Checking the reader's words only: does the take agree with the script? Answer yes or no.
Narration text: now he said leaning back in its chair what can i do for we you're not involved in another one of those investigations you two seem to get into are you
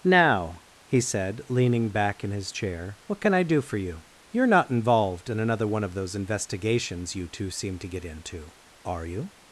no